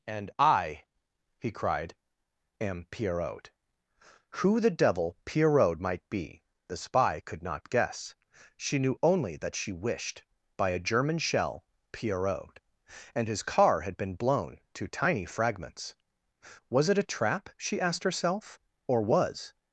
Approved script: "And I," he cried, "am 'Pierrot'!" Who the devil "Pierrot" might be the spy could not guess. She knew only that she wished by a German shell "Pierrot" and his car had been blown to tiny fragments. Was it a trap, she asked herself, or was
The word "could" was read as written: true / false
true